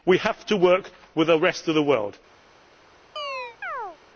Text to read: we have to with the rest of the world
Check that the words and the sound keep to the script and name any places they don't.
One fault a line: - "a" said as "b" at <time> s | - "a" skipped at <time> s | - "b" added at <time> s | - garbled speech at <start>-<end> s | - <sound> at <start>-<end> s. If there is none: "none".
- "work" added at 0.6 s
- chirp at 3.2-4.0 s